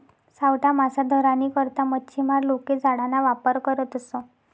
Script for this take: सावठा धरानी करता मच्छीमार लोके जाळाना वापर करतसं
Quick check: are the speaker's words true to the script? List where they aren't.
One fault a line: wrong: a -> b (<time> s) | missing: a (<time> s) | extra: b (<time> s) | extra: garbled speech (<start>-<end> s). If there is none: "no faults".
extra: मासा (0.7 s)